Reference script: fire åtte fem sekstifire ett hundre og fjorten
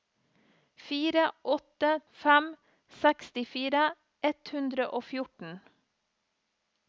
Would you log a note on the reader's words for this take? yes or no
no